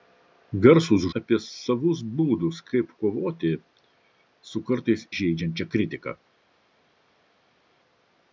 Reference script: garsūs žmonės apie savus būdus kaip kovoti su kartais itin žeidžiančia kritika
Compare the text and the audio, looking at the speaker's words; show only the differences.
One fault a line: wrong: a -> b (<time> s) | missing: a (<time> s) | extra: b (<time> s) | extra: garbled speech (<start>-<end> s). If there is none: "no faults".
missing: žmonės (1.0 s)
missing: itin (5.1 s)